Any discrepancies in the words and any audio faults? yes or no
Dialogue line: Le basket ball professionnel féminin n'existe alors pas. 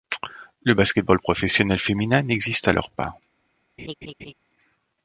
yes